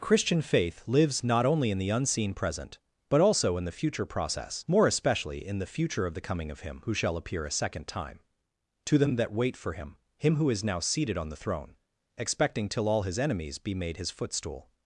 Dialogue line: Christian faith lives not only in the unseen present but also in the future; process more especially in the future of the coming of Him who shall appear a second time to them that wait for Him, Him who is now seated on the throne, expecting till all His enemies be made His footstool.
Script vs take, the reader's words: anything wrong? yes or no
no